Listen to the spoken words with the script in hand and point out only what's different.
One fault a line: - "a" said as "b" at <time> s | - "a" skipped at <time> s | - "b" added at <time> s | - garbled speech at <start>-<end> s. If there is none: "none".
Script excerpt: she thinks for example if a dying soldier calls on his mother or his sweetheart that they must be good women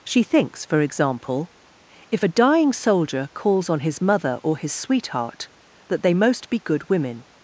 - "must" said as "most" at 6.1 s